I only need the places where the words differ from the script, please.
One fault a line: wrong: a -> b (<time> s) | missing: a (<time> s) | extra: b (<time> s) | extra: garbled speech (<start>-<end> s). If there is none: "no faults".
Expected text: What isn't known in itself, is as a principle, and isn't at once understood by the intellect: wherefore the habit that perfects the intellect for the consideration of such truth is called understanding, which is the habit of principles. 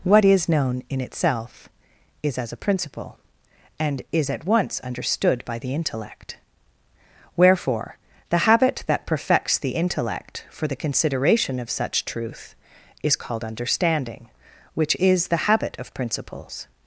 wrong: isn't -> is (0.2 s)
wrong: isn't -> is (4.1 s)